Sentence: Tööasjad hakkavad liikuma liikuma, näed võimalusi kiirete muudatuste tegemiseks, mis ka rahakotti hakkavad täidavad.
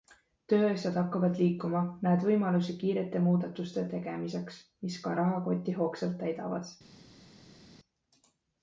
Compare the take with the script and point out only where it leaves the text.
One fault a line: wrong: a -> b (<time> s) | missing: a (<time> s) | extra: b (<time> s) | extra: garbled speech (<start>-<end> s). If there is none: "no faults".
missing: liikuma (1.8 s)
wrong: hakkavad -> hoogsalt (5.8 s)